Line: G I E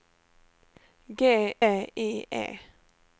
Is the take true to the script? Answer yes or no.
yes